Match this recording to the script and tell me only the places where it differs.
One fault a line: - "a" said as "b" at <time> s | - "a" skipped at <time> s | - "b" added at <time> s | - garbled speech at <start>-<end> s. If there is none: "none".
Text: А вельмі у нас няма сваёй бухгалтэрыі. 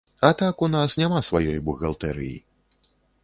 - "вельмі" said as "так" at 0.4 s